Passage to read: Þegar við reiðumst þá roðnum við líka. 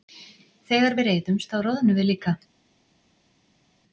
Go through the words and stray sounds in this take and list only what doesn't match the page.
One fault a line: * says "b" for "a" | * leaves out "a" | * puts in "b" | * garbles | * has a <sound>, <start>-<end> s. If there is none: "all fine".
all fine